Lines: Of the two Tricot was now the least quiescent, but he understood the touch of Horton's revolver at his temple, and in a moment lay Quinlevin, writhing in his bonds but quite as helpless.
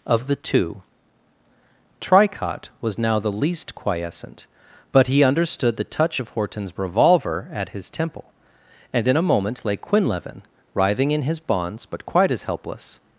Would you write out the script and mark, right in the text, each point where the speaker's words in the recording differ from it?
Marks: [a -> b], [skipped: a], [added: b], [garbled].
Of the two Tricot was now the least quiescent, but he understood the touch of Horton's revolver at his temple, and in a moment lay Quinlevin, writhing in his bonds but quite as helpless.